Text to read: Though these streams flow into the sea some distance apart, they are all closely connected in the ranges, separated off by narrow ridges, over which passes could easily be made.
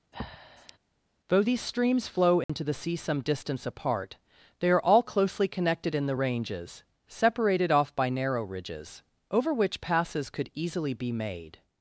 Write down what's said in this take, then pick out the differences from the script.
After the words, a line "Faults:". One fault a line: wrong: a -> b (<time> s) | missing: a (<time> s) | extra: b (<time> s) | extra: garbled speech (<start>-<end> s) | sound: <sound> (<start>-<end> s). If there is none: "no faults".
Though these streams flow into the sea some distance apart, they are all closely connected in the ranges, separated off by narrow ridges, over which passes could easily be made.
Faults:
sound: breath (0.1-0.8 s)
sound: dropout (2.4-2.5 s)